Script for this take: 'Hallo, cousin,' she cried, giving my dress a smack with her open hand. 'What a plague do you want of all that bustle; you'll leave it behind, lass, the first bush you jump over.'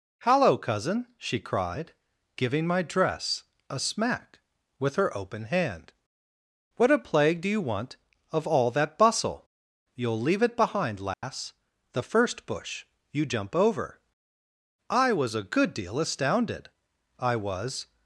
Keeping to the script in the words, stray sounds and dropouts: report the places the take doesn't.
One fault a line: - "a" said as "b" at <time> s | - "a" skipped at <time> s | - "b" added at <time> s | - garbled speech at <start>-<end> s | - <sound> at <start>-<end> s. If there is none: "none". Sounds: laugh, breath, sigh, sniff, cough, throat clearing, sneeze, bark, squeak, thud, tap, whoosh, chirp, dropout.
- dropout at 11.1-11.2 s
- "I was a good deal astounded I was" added at 14.9 s